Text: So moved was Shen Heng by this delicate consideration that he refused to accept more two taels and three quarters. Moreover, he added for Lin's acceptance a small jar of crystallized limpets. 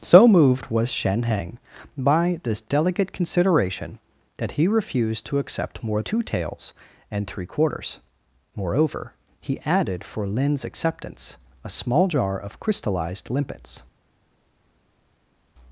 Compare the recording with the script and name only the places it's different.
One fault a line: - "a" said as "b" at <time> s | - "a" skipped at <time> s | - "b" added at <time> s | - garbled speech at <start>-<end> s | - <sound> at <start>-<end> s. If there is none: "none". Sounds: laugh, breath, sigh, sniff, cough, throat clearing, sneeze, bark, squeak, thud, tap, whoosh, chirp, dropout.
none